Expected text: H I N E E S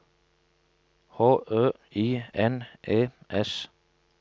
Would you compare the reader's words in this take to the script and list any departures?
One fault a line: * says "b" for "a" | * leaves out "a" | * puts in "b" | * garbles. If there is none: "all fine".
* puts in "Ø"
* leaves out "E"